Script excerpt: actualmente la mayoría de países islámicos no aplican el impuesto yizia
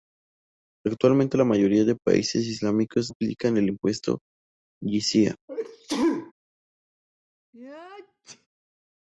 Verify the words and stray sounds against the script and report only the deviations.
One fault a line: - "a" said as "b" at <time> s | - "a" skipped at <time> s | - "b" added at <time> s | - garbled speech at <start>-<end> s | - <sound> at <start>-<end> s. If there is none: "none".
- "no" skipped at 3.1 s
- sneeze at 5.5-6.3 s
- sneeze at 7.5-8.5 s